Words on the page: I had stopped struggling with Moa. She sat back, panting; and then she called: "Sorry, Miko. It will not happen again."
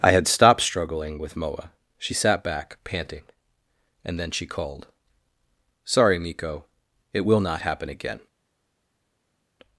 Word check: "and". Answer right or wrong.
right